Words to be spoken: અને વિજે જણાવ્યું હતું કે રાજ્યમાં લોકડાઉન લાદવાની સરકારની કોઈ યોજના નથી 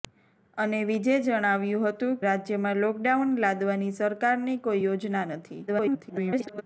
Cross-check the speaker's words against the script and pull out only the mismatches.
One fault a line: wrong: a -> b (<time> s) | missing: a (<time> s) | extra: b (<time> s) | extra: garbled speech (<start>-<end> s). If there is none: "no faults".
missing: કે (2.2 s)
extra: garbled speech (5.7-6.6 s)